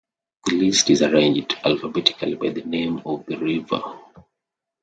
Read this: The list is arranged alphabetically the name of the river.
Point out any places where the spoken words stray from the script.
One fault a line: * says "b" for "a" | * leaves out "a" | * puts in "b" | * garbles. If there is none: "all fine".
* puts in "by"